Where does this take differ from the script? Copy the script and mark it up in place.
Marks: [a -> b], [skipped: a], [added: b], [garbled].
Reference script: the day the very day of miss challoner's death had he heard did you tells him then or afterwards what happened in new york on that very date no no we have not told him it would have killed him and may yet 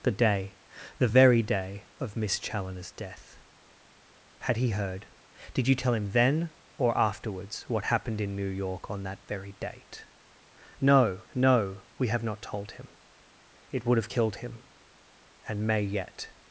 the day the very day of miss challoner's death had he heard did you [tells -> tell] him then or afterwards what happened in new york on that very date no no we have not told him it would have killed him and may yet